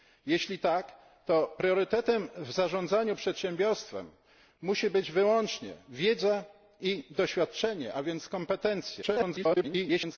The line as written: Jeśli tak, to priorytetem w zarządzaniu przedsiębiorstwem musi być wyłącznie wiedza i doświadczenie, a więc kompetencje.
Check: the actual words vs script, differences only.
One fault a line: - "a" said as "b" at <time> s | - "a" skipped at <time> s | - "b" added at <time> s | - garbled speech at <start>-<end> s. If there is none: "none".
- garbled speech at 9.0-10.2 s